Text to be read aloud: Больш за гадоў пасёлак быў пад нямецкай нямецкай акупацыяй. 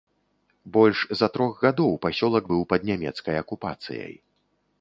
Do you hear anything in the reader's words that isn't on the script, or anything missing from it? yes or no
yes